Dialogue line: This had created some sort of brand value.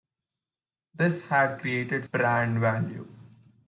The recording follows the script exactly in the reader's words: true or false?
false